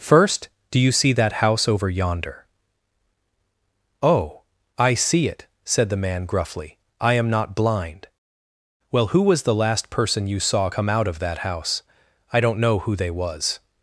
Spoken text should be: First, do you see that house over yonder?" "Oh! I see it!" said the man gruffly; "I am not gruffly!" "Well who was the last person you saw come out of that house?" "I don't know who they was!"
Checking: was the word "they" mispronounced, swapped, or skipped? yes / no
no